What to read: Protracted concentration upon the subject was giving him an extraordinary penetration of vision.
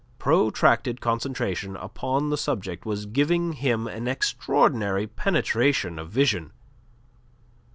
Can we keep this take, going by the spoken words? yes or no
yes